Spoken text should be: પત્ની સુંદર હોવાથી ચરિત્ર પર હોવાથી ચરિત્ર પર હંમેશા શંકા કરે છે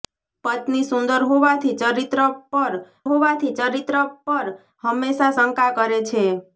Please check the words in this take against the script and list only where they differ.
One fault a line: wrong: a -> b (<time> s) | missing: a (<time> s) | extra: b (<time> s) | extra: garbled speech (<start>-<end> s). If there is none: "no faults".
no faults